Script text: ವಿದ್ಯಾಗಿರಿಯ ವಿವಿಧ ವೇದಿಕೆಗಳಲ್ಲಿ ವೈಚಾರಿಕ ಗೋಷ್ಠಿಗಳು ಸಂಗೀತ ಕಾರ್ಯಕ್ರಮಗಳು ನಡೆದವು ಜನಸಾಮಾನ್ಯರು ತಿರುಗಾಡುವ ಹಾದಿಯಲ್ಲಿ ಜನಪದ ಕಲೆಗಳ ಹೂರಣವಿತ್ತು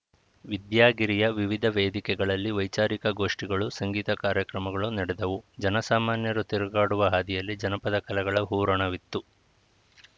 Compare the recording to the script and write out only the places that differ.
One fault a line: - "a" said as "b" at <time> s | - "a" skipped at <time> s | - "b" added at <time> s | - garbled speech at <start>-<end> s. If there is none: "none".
none